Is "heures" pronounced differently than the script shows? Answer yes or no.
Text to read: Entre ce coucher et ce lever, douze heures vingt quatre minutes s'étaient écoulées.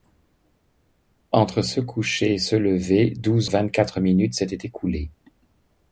yes